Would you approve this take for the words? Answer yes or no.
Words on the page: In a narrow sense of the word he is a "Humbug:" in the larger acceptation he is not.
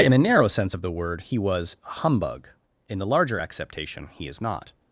no